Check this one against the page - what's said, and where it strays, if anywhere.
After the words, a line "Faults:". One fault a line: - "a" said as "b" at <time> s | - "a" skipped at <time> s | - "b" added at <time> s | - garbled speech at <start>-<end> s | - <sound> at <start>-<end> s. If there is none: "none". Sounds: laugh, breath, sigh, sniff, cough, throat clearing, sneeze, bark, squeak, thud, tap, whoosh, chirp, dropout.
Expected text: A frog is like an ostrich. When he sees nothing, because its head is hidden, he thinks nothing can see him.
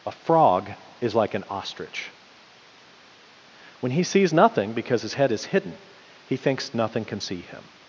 A frog is like an ostrich. When he sees nothing, because his head is hidden, he thinks nothing can see him.
Faults:
- "its" said as "his" at 5.0 s